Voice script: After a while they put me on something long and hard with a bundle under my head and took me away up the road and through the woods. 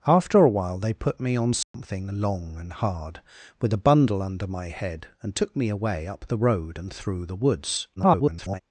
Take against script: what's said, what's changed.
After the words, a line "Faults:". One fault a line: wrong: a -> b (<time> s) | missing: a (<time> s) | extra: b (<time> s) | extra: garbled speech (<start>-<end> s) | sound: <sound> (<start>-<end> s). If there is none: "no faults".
After a while they put me on something long and hard with a bundle under my head and took me away up the road and through the woods. [garbled]
Faults:
sound: dropout (1.6-1.7 s)
extra: garbled speech (8.0-8.6 s)